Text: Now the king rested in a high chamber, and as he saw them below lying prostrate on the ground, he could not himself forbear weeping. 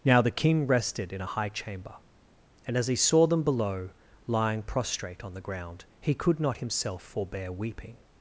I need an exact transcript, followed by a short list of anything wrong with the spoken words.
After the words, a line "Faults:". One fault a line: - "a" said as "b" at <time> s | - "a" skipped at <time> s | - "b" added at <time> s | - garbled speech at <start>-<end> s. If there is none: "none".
Now the king rested in a high chamber, and as he saw them below lying prostrate on the ground, he could not himself forbear weeping.
Faults:
none